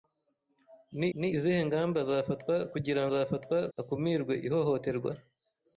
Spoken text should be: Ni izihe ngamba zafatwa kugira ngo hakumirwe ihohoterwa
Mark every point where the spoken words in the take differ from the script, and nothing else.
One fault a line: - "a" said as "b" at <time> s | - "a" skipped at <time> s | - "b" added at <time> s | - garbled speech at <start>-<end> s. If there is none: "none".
- "ni" added at 1.2 s
- "ngo" said as "zafatwa" at 3.1 s